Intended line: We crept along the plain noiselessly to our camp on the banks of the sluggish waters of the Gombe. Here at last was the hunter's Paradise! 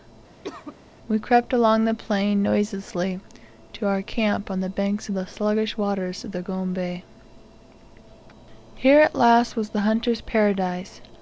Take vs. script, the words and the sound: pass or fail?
fail